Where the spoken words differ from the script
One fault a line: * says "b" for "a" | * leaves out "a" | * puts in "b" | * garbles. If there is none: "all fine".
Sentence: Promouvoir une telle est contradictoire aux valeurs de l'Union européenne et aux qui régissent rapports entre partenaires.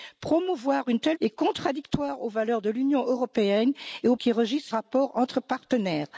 all fine